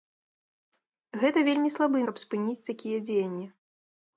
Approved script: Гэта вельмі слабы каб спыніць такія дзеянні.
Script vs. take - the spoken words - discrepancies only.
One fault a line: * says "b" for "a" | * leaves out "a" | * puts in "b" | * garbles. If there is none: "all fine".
all fine